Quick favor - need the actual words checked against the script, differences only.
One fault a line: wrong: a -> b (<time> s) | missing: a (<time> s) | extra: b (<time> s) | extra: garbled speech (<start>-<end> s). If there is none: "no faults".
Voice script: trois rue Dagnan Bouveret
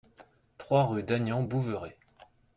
no faults